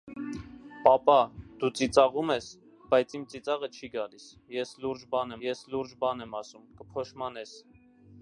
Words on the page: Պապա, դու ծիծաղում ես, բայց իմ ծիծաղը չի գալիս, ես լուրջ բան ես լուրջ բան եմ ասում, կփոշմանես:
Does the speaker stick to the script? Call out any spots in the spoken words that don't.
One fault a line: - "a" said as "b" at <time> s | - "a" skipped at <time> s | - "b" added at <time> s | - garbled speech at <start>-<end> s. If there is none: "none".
none